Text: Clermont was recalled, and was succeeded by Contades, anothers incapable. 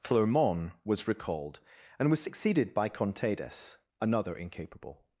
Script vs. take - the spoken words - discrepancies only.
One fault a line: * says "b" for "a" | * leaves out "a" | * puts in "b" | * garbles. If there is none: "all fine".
* says "another" for "anothers"